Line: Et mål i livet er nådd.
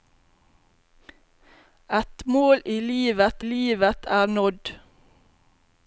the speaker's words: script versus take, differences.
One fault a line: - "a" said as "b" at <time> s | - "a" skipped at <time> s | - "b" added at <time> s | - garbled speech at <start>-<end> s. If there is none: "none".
- "livet" added at 3.4 s